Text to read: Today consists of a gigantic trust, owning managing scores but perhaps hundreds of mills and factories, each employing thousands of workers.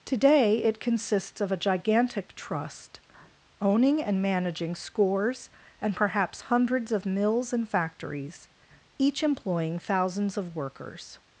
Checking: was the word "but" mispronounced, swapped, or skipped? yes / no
yes